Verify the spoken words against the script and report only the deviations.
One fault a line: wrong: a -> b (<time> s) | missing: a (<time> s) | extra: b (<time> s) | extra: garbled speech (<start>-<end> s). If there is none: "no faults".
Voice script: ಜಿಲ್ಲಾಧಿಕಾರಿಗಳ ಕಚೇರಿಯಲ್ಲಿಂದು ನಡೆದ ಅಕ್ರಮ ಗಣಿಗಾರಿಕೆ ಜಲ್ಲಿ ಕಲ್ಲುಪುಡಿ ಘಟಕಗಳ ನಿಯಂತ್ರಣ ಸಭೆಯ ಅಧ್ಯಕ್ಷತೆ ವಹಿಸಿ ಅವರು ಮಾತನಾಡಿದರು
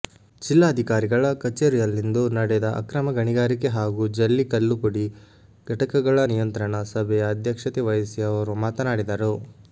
extra: ಹಾಗೂ (3.8 s)